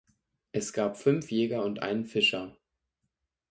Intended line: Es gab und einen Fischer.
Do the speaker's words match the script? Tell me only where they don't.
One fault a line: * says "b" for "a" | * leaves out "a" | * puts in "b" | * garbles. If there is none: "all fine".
* puts in "fünf Jäger"